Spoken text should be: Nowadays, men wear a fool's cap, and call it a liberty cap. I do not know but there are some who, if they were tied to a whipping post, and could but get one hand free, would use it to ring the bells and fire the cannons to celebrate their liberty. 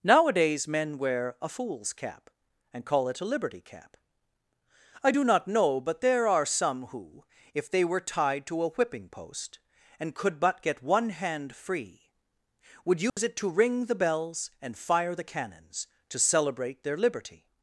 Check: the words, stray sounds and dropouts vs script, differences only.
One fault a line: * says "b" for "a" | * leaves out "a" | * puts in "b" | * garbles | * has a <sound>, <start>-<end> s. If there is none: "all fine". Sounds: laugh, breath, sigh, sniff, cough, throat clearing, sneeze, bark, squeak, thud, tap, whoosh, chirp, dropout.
* has a dropout, 13.1-13.2 s